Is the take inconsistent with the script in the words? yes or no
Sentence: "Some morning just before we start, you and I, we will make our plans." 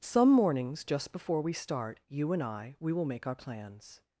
yes